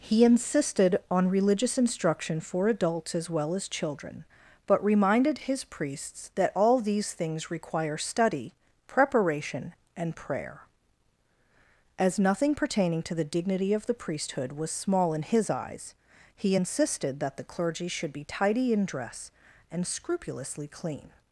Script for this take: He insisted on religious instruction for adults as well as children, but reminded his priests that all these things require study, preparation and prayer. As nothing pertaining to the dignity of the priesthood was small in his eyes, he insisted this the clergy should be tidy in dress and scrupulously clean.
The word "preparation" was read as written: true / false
true